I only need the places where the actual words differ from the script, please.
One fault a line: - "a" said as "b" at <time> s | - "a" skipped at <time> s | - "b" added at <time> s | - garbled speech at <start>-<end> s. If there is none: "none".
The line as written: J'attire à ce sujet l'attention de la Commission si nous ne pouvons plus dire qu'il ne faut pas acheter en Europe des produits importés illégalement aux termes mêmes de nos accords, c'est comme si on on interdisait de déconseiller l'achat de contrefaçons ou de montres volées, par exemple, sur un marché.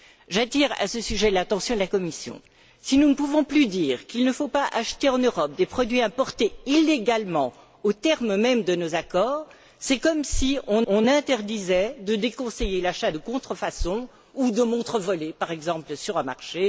none